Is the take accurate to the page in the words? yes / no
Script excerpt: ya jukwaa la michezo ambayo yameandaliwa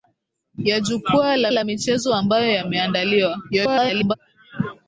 no